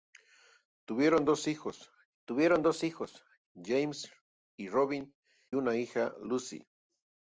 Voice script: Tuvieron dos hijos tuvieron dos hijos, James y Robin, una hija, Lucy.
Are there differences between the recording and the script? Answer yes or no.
no